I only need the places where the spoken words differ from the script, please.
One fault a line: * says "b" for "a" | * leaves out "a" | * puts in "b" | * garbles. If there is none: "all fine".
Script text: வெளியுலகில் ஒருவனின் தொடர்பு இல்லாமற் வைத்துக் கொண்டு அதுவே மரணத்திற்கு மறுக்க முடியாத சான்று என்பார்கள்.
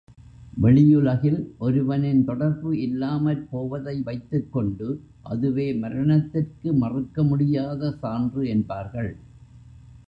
* puts in "போவதை"